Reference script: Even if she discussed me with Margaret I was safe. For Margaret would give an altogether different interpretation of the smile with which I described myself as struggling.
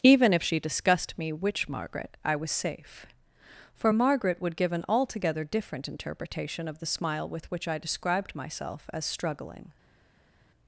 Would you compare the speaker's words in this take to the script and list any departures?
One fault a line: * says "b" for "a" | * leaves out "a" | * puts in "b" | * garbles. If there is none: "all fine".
* says "which" for "with"